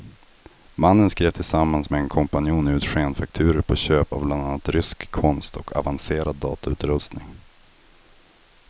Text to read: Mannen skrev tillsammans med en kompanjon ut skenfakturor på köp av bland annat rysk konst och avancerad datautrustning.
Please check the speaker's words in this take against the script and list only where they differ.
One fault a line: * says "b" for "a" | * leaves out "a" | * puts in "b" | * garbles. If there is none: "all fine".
all fine